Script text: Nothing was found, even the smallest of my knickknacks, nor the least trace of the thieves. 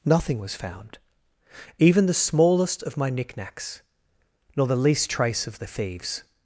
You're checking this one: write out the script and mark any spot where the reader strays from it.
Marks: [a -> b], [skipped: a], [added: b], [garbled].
Nothing was found, even the smallest of my knickknacks, nor the least trace of the thieves.